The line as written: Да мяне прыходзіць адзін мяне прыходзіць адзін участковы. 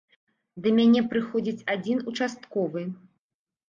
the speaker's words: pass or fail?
fail